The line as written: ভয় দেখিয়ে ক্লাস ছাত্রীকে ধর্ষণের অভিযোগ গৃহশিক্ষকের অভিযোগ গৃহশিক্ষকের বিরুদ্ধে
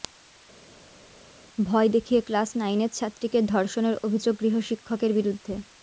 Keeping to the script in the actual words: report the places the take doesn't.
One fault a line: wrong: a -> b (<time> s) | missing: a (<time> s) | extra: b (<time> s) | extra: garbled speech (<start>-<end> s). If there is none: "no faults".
extra: নাইনের (2.6 s)
missing: অভিযোগ গৃহশিক্ষকের (5.1 s)